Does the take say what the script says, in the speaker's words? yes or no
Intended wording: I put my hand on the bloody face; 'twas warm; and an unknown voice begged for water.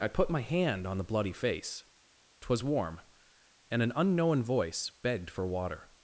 yes